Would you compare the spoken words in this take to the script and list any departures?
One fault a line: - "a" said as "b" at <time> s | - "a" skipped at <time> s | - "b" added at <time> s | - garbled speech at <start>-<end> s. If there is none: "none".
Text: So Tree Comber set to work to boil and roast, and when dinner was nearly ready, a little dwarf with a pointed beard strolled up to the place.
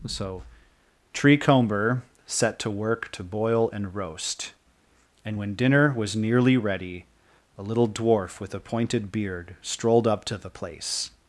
none